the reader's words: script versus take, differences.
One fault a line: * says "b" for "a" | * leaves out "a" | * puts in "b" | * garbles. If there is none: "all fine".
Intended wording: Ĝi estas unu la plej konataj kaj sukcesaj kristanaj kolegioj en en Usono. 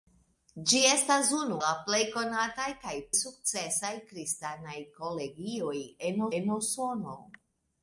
all fine